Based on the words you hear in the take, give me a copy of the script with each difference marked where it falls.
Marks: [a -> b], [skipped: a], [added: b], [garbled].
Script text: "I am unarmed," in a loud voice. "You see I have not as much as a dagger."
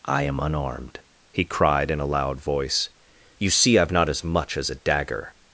"I am unarmed," [added: he cried] in a loud voice. "You see I have not as much as a dagger."